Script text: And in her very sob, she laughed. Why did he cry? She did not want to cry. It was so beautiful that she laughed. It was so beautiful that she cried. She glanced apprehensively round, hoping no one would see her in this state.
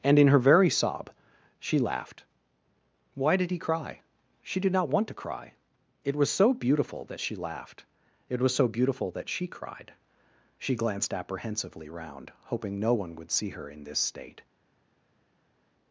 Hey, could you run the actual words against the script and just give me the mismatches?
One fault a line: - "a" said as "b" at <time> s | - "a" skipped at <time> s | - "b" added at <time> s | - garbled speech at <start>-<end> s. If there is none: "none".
none